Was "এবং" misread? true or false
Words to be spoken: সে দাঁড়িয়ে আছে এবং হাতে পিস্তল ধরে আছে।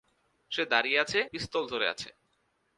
true